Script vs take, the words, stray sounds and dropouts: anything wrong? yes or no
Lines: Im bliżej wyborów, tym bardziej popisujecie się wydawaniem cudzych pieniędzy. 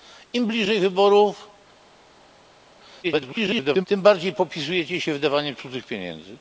yes